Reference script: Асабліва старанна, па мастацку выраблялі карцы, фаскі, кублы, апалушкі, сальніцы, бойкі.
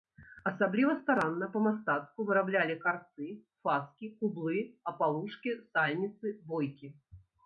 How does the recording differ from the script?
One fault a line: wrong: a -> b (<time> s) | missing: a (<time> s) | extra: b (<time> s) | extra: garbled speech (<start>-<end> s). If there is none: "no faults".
no faults